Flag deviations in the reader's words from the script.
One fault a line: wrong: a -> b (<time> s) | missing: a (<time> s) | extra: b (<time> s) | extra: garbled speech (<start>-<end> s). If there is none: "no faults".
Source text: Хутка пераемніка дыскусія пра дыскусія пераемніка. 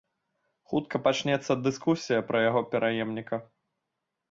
wrong: пераемніка -> пачнецца (1.1 s)
wrong: дыскусія -> яго (2.5 s)